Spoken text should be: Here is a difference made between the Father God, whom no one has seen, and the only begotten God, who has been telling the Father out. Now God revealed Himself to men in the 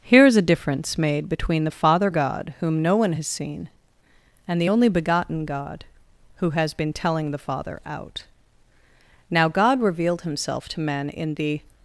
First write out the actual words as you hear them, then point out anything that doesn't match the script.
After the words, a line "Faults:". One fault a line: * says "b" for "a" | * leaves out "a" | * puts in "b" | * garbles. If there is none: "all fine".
Here is a difference made between the Father God, whom no one has seen, and the only begotten God, who has been telling the Father out. Now God revealed Himself to men in the
Faults:
all fine